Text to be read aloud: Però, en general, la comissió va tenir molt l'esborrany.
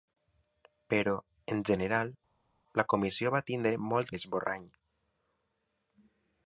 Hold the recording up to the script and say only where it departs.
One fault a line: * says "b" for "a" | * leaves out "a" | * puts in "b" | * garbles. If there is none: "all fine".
all fine